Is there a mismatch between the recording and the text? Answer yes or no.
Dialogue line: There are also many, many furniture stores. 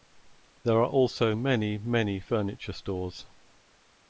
no